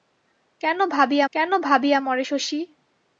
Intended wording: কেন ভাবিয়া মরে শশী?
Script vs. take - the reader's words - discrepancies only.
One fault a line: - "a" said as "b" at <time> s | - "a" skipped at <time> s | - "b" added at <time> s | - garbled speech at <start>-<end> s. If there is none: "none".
- "কেন ভাবিয়া" added at 1.3 s